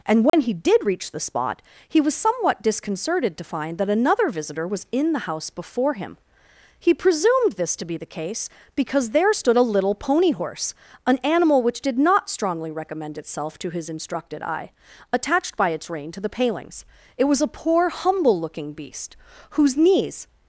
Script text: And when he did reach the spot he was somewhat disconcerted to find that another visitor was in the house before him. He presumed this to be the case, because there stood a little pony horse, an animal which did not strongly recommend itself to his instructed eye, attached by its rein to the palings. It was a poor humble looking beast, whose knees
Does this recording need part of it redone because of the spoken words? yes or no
no